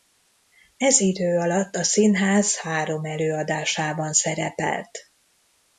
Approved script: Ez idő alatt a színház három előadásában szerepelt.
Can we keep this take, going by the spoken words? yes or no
yes